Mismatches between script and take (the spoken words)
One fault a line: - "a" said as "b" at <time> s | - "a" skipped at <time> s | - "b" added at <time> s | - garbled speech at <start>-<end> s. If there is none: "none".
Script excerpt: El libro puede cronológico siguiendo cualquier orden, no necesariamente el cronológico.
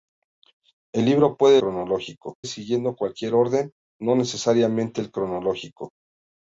none